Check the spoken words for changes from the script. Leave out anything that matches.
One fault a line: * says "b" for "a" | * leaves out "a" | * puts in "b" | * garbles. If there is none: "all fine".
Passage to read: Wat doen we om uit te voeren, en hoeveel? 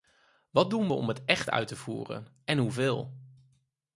* puts in "het echt"